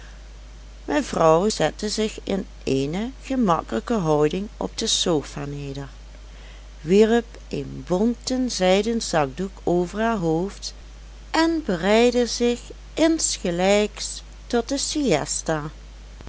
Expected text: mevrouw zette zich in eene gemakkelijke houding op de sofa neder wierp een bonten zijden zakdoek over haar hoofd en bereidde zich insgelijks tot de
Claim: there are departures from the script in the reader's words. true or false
false